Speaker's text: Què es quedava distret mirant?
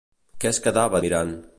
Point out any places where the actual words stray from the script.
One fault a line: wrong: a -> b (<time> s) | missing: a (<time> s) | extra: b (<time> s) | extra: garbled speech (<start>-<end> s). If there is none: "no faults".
missing: distret (1.0 s)